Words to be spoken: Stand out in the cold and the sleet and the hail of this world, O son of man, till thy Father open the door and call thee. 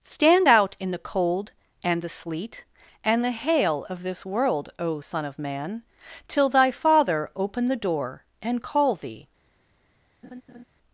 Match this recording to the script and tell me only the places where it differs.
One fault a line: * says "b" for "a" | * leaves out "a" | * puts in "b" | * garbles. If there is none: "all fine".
all fine